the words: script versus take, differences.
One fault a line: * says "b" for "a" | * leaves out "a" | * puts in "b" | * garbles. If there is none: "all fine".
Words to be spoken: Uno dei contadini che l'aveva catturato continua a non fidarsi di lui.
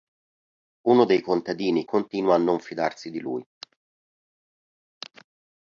* leaves out "che l'aveva catturato"